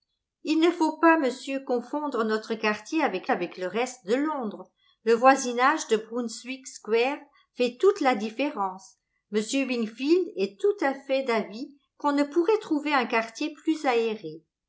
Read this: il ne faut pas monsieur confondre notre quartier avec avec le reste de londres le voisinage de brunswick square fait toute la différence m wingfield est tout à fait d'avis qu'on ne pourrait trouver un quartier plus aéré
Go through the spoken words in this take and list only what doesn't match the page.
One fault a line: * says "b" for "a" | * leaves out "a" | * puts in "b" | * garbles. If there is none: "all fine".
all fine